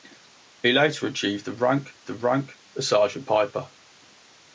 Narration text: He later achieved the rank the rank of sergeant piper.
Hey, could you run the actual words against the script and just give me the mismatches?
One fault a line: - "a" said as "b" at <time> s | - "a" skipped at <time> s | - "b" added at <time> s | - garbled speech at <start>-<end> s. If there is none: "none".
none